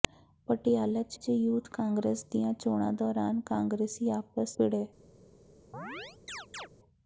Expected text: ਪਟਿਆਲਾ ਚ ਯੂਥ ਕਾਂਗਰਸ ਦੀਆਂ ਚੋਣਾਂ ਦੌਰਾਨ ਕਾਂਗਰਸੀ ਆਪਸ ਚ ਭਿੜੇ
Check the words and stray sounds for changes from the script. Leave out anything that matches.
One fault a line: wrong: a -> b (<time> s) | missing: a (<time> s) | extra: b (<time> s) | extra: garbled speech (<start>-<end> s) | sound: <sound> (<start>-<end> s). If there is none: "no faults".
extra: ਚ (1.2 s)
missing: ਚ (4.6 s)
sound: chirp (5.7-6.7 s)